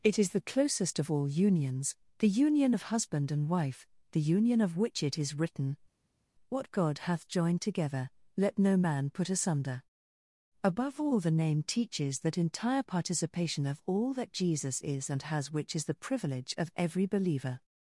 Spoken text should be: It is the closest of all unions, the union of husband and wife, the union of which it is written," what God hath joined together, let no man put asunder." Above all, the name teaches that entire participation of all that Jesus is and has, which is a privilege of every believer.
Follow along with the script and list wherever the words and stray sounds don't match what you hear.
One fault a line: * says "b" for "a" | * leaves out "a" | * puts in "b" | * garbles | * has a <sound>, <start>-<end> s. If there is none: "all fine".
* says "the" for "a"